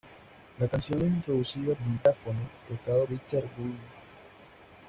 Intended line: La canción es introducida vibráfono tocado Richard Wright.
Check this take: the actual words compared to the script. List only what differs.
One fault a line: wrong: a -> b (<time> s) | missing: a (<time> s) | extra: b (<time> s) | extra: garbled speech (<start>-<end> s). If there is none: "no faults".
no faults